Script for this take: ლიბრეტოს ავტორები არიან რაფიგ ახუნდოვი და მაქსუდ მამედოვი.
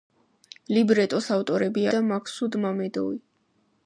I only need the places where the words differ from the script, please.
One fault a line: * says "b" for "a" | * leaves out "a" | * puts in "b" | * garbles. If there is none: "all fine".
* leaves out "არიან რაფიგ ახუნდოვი"